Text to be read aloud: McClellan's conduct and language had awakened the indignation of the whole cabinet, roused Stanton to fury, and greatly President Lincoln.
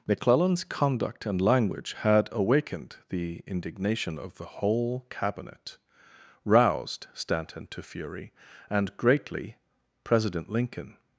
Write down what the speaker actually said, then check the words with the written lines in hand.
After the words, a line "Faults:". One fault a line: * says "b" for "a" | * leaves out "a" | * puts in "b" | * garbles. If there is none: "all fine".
McClellan's conduct and language had awakened the indignation of the whole cabinet, roused Stanton to fury, and greatly President Lincoln.
Faults:
all fine